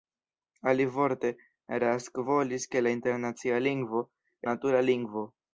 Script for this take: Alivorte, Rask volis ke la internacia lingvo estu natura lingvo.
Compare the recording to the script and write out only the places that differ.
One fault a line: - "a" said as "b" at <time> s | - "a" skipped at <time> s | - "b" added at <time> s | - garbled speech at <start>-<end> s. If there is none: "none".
- "estu" skipped at 4.0 s